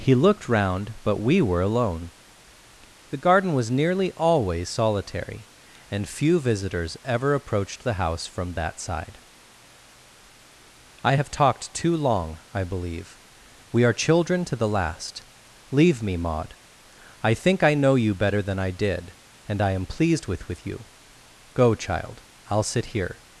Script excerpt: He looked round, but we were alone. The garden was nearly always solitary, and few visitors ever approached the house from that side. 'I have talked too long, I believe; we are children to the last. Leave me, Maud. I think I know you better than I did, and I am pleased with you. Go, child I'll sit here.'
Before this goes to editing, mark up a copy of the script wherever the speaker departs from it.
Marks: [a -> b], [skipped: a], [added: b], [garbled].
He looked round, but we were alone. The garden was nearly always solitary, and few visitors ever approached the house from that side. 'I have talked too long, I believe; we are children to the last. Leave me, Maud. I think I know you better than I did, and I am pleased with [added: with] you. Go, child I'll sit here.'